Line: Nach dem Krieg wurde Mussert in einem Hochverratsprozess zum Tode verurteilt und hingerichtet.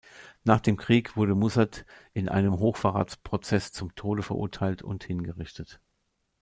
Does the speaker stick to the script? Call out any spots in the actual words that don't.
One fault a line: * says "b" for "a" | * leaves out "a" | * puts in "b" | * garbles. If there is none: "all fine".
all fine